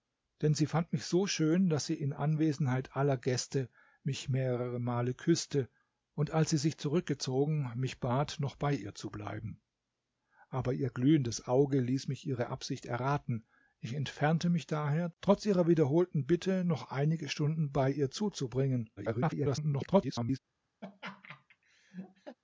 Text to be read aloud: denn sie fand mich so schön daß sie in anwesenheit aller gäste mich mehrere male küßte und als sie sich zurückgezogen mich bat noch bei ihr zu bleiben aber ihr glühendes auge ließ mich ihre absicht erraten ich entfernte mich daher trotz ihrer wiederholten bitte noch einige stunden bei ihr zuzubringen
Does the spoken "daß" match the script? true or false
true